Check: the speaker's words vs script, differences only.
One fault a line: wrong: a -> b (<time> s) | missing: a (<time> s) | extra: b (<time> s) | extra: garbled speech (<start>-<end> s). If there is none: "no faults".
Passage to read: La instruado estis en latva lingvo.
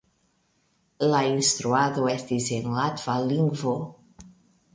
no faults